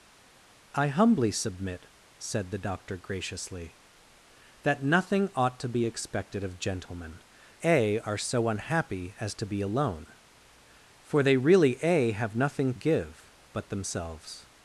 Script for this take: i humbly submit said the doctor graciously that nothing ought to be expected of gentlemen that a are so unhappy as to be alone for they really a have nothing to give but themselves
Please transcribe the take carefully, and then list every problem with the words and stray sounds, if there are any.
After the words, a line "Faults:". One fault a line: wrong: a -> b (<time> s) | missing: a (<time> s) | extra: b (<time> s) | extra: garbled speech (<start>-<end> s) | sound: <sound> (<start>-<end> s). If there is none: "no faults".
i humbly submit said the doctor graciously that nothing ought to be expected of gentlemen a are so unhappy as to be alone for they really a have nothing give but themselves
Faults:
missing: that (7.2 s)
missing: to (12.7 s)